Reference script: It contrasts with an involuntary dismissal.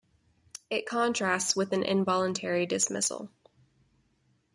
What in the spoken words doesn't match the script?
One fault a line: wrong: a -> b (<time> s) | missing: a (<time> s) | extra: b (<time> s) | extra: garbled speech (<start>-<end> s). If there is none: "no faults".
no faults